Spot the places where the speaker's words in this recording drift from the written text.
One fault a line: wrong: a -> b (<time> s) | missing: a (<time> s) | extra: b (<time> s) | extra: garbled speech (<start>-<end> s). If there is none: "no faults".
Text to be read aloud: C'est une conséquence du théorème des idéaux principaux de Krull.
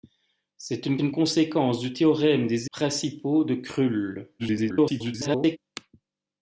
extra: une (1.0 s)
missing: idéaux (2.7 s)
extra: garbled speech (4.4-5.6 s)